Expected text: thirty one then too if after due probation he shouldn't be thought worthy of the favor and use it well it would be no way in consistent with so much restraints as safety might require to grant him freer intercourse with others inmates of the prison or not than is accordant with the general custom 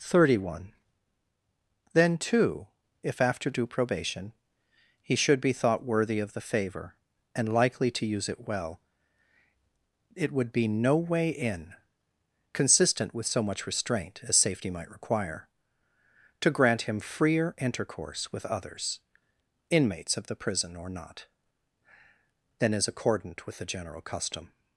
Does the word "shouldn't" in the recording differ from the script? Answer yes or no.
yes